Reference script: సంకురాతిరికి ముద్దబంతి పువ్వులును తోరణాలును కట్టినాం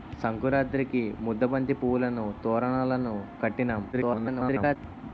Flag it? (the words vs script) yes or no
yes